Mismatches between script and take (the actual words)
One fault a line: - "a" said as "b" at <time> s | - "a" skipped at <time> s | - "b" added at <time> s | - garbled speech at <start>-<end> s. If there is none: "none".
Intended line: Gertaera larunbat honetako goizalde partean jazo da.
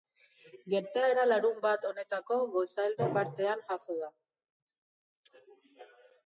none